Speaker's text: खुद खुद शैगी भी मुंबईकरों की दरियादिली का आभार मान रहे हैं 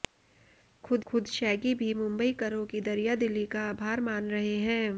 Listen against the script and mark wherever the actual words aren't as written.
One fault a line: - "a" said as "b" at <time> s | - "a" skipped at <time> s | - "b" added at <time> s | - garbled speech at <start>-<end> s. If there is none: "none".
none